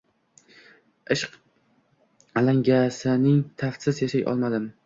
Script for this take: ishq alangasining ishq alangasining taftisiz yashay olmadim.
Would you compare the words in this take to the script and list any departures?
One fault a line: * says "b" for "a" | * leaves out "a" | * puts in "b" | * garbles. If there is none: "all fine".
* leaves out "ishq alangasining"